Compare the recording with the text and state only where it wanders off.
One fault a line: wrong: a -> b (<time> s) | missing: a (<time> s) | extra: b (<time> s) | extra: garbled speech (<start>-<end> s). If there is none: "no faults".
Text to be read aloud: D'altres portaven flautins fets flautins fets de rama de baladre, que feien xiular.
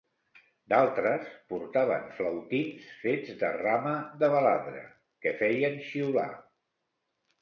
missing: flautins fets (3.4 s)